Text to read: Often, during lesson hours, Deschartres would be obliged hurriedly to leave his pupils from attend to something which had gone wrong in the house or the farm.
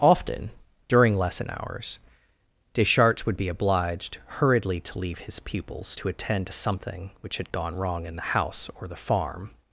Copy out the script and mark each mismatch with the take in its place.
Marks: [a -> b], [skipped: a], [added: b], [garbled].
Often, during lesson hours, Deschartres would be obliged hurriedly to leave his pupils [from -> to] attend to something which had gone wrong in the house or the farm.